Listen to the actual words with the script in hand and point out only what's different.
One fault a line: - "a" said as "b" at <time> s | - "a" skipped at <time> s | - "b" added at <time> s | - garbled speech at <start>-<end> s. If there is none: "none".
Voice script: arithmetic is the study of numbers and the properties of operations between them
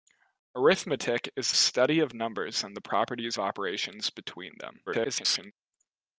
- "the" skipped at 1.5 s
- "of" skipped at 3.4 s
- garbled speech at 4.9-5.5 s